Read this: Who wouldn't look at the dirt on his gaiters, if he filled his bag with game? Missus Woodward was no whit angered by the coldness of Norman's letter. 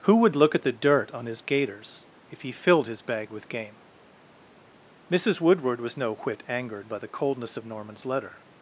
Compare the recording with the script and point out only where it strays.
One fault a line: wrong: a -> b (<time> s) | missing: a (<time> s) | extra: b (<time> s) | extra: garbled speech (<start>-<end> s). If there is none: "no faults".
wrong: wouldn't -> would (0.1 s)